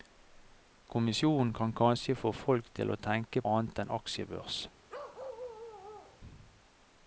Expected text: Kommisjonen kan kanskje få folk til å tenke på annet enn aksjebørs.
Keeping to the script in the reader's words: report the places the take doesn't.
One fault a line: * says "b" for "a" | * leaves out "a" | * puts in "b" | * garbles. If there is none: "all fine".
* leaves out "på"